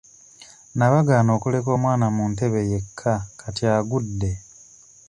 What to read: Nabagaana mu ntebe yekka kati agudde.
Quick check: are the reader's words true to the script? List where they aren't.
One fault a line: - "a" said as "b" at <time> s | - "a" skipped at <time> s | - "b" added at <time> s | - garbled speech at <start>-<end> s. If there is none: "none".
- "okuleka omwana" added at 1.4 s